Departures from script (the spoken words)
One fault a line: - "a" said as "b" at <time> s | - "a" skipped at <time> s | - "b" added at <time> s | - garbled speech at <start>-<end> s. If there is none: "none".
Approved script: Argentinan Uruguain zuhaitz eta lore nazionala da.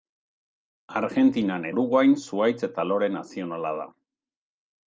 none